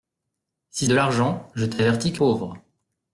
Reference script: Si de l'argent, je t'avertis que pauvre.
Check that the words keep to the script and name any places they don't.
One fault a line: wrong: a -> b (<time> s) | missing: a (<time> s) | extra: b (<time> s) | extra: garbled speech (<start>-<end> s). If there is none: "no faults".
no faults